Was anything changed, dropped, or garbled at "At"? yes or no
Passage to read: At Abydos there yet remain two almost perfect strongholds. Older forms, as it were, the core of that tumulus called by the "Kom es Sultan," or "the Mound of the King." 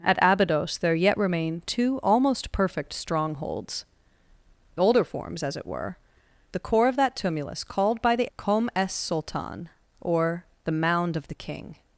no